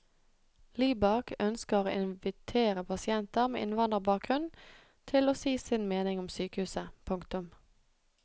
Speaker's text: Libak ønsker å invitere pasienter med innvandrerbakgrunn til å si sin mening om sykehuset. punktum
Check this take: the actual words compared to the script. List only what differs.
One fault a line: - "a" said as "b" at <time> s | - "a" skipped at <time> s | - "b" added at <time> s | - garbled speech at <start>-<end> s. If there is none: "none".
none